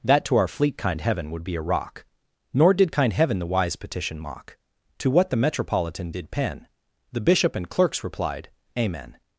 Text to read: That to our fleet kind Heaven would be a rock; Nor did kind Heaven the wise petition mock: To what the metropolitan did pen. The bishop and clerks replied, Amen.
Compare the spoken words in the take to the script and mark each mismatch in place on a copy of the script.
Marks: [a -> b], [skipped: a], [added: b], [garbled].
That to our fleet kind Heaven would be a rock; Nor did kind Heaven the wise petition mock: To what the metropolitan did pen. The bishop and clerks replied, Amen.